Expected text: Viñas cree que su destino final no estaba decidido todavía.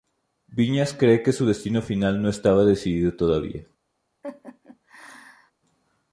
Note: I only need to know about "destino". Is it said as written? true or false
true